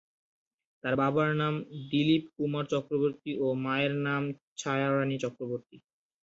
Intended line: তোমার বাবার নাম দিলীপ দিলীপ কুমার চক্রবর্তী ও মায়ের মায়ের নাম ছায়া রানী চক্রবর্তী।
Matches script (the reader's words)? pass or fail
fail